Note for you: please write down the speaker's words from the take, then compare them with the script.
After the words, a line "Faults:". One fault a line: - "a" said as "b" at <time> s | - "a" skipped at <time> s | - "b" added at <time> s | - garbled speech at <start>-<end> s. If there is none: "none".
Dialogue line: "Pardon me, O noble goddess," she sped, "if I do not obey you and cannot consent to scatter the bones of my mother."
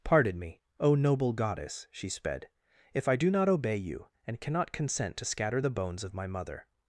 "Pardon me, O noble goddess," she sped, "if I do not obey you and cannot consent to scatter the bones of my mother."
Faults:
none